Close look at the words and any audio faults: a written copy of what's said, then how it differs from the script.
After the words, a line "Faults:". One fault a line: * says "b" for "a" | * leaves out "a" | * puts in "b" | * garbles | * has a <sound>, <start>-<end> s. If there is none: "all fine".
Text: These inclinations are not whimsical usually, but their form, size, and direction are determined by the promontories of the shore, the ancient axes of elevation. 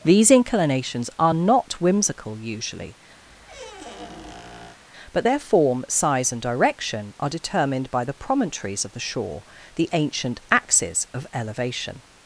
These inclinations are not whimsical usually, but their form, size, and direction are determined by the promontories of the shore, the ancient axes of elevation.
Faults:
* has a squeak, 3.2-4.8 s